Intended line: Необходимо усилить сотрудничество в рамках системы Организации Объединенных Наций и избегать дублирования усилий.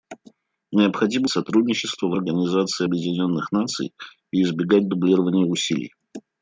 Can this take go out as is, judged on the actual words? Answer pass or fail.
fail